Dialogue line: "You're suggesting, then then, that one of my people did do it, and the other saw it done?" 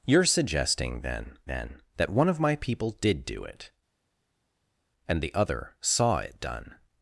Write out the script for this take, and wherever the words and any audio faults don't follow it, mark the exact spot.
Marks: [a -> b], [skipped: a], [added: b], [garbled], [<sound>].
"You're suggesting, then then, that one of my people did do it, and the other saw it done?"